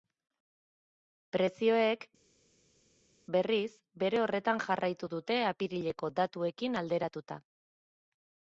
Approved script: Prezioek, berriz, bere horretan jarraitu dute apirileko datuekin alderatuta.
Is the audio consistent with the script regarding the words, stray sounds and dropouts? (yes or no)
yes